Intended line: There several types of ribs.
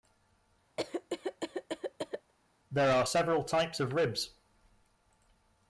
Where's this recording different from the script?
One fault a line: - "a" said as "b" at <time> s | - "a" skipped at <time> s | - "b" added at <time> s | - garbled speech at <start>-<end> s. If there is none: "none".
- "are" added at 3.0 s